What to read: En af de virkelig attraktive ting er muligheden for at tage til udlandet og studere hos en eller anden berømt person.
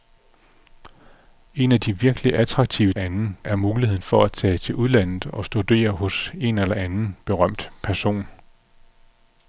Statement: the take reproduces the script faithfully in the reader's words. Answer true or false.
false